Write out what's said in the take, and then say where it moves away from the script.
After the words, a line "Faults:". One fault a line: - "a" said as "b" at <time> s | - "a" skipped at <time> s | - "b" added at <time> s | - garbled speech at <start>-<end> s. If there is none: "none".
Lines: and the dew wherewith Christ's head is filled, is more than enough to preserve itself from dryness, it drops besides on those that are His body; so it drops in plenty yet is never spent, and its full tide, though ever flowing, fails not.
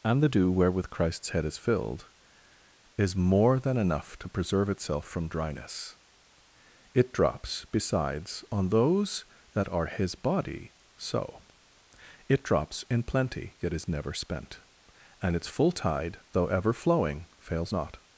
and the dew wherewith Christ's head is filled, is more than enough to preserve itself from dryness, it drops besides on those that are His body; so it drops in plenty yet is never spent, and its full tide, though ever flowing, fails not.
Faults:
none